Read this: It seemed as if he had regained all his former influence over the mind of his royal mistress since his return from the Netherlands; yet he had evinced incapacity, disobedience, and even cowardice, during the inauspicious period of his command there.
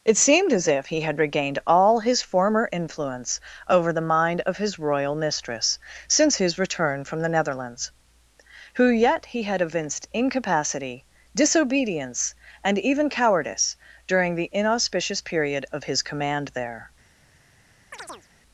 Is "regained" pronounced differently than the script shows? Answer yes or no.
no